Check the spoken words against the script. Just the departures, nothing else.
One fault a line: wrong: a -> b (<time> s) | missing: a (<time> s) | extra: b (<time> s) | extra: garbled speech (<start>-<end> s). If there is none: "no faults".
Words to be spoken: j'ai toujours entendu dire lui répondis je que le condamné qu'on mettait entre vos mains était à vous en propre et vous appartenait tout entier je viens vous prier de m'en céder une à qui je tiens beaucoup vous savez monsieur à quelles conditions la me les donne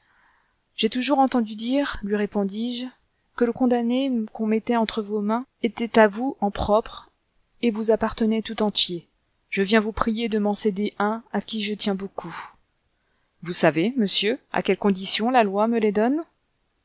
wrong: une -> un (11.0 s)
extra: loi (15.4 s)